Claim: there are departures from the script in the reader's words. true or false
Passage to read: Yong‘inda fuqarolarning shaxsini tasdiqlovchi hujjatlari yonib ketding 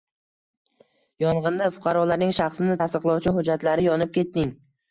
false